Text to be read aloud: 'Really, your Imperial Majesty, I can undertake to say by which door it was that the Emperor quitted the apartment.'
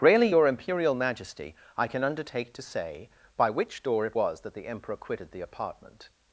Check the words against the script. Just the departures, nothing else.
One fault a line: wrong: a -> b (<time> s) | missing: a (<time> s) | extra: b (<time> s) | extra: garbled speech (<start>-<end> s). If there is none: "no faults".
no faults